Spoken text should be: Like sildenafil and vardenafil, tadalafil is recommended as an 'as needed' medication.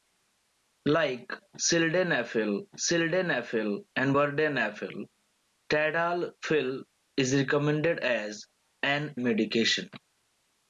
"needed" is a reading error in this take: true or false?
true